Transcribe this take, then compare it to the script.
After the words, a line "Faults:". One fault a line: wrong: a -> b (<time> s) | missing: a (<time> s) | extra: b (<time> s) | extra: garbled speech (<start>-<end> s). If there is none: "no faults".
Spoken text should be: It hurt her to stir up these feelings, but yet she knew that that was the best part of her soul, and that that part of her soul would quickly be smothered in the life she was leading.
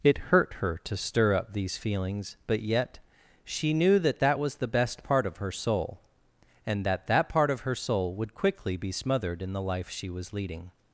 It hurt her to stir up these feelings, but yet she knew that that was the best part of her soul, and that that part of her soul would quickly be smothered in the life she was leading.
Faults:
no faults